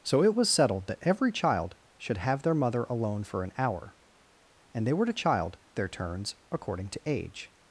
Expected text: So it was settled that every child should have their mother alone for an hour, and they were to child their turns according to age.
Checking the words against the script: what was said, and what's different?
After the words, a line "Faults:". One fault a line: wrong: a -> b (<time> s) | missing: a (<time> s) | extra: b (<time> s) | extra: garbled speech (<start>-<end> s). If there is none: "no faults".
So it was settled that every child should have their mother alone for an hour, and they were to child their turns according to age.
Faults:
no faults